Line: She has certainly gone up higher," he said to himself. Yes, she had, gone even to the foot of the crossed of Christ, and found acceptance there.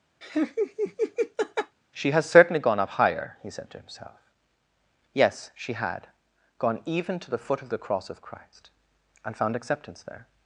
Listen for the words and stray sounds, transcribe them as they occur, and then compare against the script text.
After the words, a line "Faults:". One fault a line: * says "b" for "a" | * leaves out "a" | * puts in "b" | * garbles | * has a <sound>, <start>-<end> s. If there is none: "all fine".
She has certainly gone up higher," he said to himself. Yes, she had, gone even to the foot of the cross of Christ, and found acceptance there.
Faults:
* has a laugh, 0.2-1.8 s
* says "cross" for "crossed"